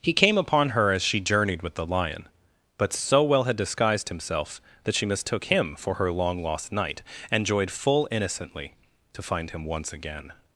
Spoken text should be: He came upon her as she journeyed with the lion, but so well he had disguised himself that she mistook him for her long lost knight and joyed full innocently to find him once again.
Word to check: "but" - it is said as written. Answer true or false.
true